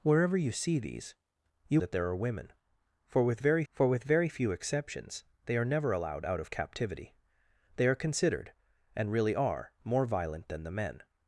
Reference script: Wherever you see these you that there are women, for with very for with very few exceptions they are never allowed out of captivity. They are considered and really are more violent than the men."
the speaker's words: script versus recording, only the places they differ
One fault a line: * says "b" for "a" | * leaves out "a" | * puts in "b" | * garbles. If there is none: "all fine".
all fine